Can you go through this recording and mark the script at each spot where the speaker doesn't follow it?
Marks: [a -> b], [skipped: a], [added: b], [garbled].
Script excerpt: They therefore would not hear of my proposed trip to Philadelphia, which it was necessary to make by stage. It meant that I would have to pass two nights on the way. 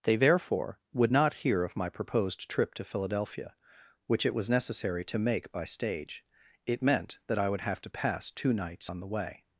They therefore would not hear of my proposed trip to Philadelphia, which it was necessary to make by stage. It meant that I would have to pass two nights on the way.